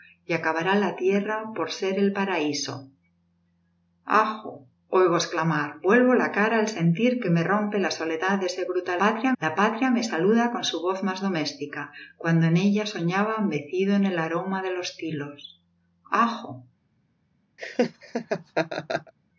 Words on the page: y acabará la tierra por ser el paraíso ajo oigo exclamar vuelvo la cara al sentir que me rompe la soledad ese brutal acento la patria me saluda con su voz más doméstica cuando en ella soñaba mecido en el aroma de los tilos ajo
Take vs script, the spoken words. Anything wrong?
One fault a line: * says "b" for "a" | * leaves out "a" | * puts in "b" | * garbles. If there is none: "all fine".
* says "patria" for "acento"